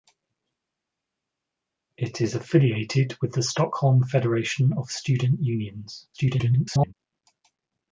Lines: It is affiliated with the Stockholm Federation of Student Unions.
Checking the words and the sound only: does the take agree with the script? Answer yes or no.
no